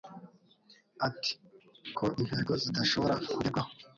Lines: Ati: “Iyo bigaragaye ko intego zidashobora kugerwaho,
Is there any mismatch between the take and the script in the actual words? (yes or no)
yes